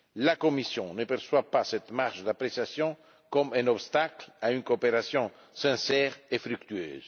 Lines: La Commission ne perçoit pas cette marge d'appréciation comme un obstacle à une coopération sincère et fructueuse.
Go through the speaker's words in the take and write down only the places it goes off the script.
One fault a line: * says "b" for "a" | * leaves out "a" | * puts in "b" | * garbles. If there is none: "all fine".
all fine